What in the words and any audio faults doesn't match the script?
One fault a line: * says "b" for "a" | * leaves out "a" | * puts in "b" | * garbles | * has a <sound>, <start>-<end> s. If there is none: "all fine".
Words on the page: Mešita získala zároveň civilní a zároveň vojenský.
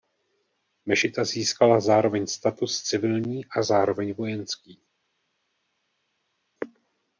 * puts in "status"